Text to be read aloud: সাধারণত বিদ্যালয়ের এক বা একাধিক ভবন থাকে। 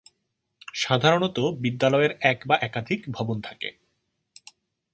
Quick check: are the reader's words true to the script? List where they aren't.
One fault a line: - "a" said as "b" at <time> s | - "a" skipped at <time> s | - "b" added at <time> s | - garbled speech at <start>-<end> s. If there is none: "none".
none